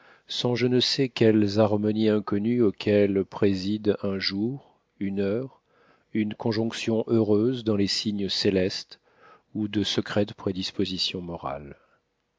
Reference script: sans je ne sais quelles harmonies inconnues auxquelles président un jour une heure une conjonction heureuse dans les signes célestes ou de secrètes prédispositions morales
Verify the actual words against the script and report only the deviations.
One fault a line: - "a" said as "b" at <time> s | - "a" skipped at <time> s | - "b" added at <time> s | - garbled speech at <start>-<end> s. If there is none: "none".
none